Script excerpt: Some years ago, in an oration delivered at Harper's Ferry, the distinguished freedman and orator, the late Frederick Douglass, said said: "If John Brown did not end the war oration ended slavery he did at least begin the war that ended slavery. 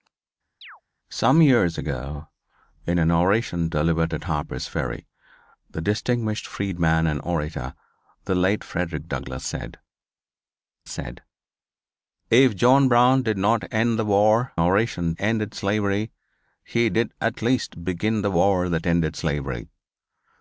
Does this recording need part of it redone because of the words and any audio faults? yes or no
yes